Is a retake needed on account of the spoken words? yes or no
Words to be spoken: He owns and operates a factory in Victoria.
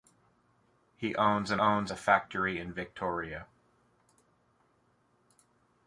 yes